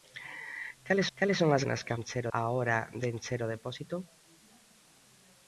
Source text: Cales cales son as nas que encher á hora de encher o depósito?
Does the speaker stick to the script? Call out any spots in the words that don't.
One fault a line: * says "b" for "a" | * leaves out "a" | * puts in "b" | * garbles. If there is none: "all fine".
all fine